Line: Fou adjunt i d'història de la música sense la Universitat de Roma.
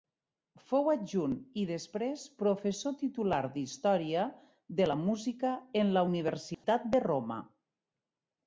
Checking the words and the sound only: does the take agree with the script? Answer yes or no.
no